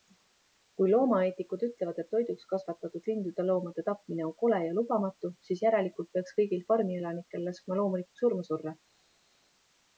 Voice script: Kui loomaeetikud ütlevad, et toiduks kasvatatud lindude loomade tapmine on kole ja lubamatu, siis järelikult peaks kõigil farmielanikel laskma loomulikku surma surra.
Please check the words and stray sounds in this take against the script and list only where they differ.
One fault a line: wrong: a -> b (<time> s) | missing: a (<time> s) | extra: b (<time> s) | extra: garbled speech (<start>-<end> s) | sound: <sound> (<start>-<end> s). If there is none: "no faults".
no faults